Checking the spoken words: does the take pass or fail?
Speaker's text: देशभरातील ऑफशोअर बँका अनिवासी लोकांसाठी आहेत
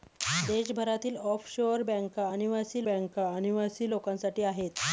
fail